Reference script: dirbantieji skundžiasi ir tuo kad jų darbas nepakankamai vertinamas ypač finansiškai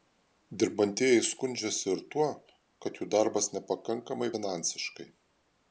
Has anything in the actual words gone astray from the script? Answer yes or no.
yes